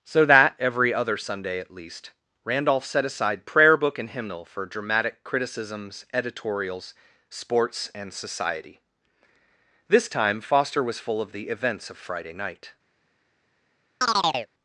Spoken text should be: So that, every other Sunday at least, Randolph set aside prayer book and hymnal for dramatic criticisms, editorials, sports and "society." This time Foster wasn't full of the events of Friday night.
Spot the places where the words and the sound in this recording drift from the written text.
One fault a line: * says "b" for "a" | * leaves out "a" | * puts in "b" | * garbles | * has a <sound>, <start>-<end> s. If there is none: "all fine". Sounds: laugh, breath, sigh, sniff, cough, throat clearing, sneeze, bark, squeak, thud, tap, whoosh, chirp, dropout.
* says "was" for "wasn't"
* has a chirp, 14.0-14.5 s